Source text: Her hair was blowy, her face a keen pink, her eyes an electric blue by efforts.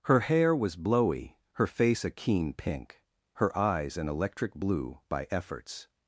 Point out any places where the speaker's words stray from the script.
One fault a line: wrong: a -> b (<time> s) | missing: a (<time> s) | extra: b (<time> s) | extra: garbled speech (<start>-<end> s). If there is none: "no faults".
no faults